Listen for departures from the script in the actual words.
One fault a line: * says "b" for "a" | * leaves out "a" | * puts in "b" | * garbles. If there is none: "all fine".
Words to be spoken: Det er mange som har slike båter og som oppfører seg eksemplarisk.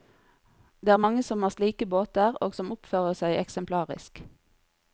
all fine